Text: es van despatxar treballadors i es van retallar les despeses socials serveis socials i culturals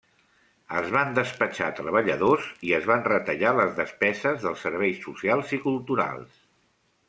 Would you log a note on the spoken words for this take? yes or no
yes